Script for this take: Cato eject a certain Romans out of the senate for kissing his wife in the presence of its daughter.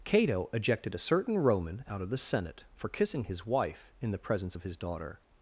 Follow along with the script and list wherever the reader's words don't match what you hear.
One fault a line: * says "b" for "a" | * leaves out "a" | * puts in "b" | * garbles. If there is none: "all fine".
* says "ejected" for "eject"
* says "Roman" for "Romans"
* says "his" for "its"